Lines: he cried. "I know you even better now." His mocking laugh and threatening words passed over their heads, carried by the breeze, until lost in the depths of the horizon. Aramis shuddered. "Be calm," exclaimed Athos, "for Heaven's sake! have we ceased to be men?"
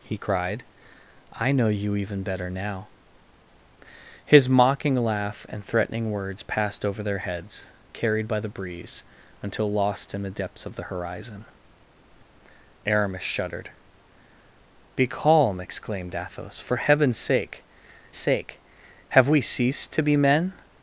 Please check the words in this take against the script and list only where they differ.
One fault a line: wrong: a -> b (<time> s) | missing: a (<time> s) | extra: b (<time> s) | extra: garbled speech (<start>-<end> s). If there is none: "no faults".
extra: sake (18.2 s)